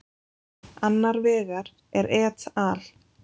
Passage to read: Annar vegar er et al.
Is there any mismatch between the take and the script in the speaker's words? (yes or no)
no